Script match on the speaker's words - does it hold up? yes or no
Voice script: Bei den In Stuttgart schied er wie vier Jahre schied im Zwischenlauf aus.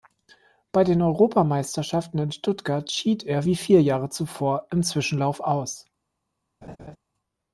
no